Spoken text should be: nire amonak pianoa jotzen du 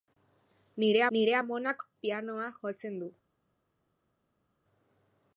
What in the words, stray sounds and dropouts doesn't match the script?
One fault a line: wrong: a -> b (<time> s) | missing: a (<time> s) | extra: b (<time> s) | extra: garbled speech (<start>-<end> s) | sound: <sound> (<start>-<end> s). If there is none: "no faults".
extra: nire (1.2 s)